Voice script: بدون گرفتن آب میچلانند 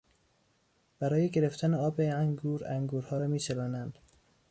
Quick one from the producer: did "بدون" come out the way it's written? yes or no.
no